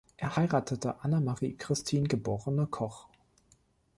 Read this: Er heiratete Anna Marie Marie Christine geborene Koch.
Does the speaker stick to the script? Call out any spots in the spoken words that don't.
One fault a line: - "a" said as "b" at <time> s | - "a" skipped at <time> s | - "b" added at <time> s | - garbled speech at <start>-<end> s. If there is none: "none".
- "Marie" skipped at 1.6 s